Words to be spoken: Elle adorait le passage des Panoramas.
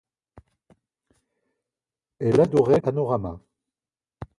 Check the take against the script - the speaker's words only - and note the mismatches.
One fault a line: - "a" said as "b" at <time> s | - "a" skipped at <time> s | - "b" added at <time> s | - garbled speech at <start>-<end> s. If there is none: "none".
- "le passage des" skipped at 2.8 s